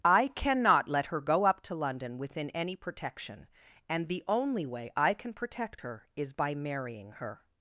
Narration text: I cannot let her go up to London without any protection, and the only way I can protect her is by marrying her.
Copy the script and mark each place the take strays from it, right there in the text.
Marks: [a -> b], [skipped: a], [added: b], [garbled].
I cannot let her go up to London [without -> within] any protection, and the only way I can protect her is by marrying her.